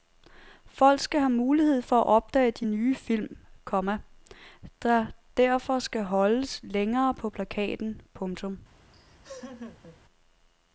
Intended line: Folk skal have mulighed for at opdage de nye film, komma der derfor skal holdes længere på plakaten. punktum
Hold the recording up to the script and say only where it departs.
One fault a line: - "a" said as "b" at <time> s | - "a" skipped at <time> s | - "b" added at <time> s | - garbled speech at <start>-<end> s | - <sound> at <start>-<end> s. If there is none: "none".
- laugh at 8.9-10.0 s